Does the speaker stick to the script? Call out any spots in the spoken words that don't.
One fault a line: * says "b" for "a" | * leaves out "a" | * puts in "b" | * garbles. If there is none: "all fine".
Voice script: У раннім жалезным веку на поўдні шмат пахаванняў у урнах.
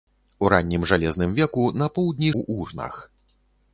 * leaves out "шмат пахаванняў"